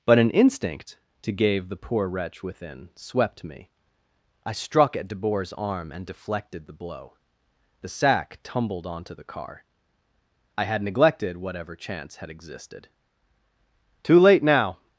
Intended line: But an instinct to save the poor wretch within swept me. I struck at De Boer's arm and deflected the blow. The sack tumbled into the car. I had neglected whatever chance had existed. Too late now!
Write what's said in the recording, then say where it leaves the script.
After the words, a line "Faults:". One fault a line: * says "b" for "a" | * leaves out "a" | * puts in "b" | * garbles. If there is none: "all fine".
But an instinct to gave the poor wretch within swept me. I struck at De Boer's arm and deflected the blow. The sack tumbled onto the car. I had neglected whatever chance had existed. Too late now!
Faults:
* says "gave" for "save"
* says "onto" for "into"